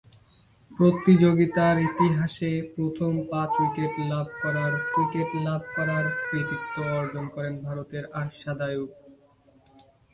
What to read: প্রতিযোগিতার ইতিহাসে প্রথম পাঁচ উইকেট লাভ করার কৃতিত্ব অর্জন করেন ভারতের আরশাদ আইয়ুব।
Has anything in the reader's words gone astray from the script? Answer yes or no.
yes